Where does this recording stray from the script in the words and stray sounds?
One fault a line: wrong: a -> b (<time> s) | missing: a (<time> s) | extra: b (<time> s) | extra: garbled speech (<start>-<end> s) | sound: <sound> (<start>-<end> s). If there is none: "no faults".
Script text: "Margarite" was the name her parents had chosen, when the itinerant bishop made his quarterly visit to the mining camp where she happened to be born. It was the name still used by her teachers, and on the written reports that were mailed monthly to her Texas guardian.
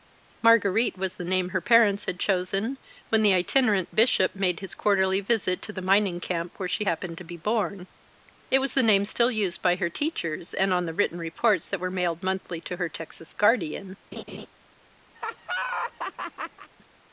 sound: laugh (14.1-14.5 s)
sound: laugh (15.1-16.7 s)